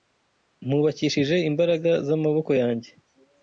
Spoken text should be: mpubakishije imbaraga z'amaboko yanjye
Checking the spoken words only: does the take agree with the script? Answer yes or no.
yes